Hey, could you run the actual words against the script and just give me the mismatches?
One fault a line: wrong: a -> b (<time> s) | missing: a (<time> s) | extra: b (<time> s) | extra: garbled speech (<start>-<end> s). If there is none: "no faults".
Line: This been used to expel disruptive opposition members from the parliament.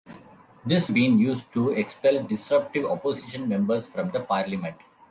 no faults